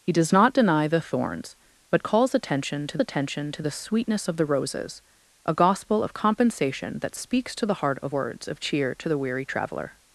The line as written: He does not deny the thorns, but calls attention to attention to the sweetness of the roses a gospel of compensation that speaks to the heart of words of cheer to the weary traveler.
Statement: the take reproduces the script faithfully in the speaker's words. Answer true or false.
true